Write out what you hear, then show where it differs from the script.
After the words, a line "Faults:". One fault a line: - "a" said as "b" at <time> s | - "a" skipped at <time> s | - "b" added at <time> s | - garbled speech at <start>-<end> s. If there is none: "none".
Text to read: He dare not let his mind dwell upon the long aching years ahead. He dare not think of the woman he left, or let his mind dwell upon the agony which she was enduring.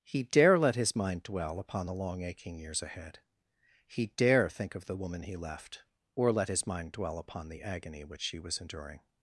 He dare let his mind dwell upon the long aching years ahead. He dare think of the woman he left, or let his mind dwell upon the agony which she was enduring.
Faults:
- "not" skipped at 0.6 s
- "not" skipped at 4.5 s